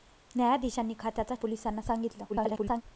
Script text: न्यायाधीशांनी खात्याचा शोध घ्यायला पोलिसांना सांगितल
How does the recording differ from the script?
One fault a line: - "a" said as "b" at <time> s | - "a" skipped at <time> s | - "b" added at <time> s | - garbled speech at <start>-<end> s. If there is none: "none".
- "शोध घ्यायला" skipped at 1.4 s
- garbled speech at 2.3-2.8 s